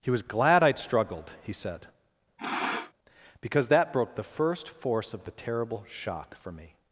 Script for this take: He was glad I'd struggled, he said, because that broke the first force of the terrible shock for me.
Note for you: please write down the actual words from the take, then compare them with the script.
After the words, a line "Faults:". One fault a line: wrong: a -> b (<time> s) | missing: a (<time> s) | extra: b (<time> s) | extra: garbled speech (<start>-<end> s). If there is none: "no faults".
He was glad I'd struggled, he said, because that broke the first force of the terrible shock for me.
Faults:
no faults